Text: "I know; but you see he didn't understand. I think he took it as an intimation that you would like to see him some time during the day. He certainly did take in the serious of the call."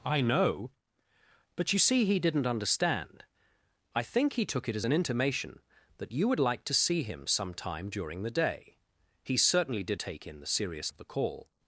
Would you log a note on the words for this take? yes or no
no